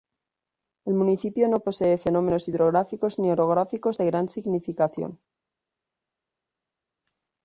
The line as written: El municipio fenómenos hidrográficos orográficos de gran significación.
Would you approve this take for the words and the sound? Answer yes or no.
no